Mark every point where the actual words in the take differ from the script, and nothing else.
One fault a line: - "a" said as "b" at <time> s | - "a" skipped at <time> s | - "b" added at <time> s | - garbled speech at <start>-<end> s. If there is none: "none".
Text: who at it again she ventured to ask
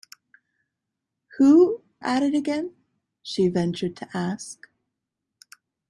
none